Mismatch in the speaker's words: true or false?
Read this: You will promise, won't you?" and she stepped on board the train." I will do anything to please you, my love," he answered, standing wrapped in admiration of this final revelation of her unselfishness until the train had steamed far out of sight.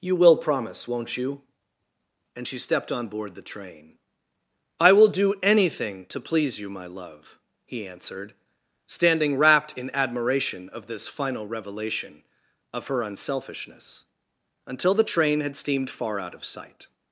false